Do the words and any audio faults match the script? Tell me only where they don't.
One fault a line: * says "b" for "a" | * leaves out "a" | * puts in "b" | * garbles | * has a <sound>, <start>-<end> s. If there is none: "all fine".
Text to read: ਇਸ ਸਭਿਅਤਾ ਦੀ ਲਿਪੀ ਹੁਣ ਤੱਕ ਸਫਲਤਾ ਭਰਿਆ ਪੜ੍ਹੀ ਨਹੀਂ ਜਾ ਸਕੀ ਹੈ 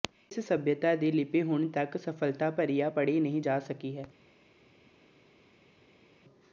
all fine